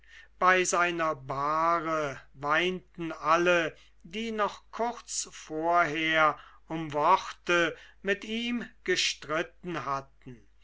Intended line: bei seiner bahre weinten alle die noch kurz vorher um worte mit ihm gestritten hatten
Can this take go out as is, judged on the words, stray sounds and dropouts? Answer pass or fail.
pass